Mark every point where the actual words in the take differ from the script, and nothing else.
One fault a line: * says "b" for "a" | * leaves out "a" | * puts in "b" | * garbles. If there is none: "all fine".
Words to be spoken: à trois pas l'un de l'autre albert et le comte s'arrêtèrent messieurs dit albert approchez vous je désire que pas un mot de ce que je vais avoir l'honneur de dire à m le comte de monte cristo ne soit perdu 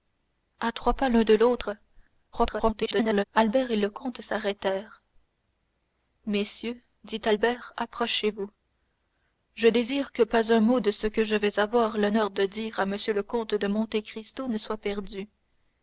* garbles